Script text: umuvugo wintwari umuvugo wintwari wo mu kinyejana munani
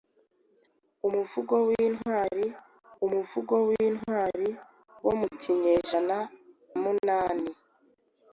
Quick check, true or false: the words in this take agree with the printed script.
true